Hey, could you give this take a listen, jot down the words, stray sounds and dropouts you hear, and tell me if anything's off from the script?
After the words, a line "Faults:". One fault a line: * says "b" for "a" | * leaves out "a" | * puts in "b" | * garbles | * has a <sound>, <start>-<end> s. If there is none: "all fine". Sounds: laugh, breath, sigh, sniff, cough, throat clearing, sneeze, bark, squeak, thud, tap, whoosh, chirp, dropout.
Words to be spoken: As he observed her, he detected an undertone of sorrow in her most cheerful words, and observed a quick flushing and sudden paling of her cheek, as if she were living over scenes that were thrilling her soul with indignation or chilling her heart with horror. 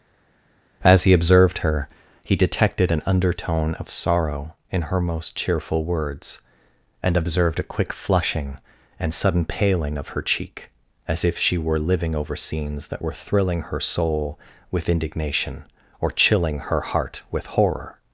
As he observed her, he detected an undertone of sorrow in her most cheerful words, and observed a quick flushing and sudden paling of her cheek, as if she were living over scenes that were thrilling her soul with indignation or chilling her heart with horror.
Faults:
all fine